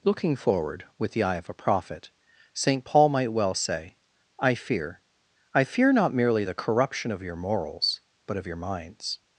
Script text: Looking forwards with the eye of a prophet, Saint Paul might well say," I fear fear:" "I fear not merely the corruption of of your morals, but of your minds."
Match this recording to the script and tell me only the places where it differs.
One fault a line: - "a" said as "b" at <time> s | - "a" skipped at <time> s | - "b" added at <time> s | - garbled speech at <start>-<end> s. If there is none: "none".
- "forwards" said as "forward" at 0.3 s
- "fear" skipped at 5.0 s
- "of" skipped at 7.2 s